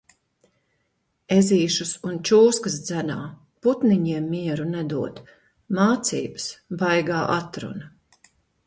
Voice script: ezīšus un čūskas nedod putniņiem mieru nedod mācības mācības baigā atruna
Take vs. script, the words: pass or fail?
fail